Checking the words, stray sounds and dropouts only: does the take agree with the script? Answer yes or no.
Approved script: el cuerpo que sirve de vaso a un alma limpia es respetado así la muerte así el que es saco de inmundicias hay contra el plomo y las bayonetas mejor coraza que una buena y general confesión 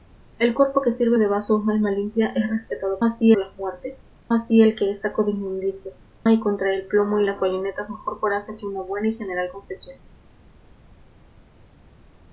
yes